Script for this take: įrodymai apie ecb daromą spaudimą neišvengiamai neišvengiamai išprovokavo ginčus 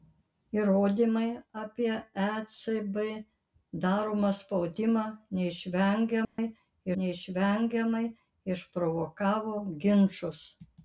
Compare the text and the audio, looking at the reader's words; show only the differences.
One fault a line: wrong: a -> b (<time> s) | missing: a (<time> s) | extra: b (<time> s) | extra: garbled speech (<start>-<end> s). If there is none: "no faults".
no faults